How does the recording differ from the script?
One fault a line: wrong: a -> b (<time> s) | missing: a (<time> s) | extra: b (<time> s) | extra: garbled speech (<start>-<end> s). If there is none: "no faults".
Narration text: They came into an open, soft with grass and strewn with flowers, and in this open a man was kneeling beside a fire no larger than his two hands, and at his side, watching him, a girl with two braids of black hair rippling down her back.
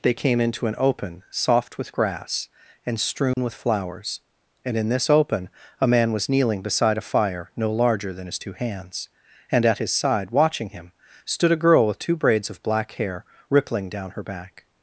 extra: stood (11.2 s)